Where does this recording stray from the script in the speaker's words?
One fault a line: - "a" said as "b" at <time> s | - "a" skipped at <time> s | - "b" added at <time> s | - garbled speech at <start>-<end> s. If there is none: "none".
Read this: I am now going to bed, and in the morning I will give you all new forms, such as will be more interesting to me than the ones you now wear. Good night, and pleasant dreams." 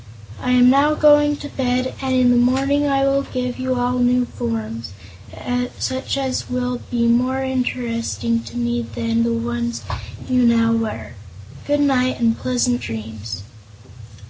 none